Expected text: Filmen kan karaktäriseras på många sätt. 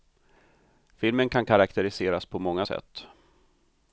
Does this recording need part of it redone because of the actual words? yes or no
no